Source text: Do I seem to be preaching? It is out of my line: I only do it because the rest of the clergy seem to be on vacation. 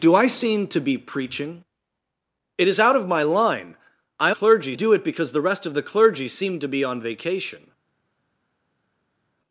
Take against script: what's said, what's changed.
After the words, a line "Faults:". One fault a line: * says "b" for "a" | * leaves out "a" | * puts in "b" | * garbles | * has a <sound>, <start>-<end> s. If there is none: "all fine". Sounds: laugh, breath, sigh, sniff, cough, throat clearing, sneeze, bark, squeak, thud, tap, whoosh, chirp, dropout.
Do I seem to be preaching? It is out of my line: I clergy do it because the rest of the clergy seem to be on vacation.
Faults:
* says "clergy" for "only"